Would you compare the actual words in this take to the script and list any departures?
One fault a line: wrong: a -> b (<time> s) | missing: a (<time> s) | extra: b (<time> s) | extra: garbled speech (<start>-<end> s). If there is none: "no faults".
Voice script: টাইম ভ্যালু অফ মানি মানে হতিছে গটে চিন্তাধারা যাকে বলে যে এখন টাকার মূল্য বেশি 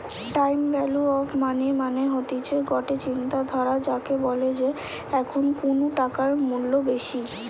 extra: কুনু (5.6 s)